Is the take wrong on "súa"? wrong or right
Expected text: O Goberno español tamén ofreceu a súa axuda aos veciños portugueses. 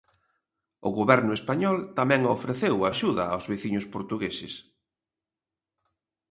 wrong